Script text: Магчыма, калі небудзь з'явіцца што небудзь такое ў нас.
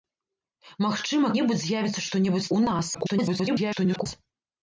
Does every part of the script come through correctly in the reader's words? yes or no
no